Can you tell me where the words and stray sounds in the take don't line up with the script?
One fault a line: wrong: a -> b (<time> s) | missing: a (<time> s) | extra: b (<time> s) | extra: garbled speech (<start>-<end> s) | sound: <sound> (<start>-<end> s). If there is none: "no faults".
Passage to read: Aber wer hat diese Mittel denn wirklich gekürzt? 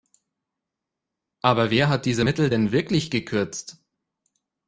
no faults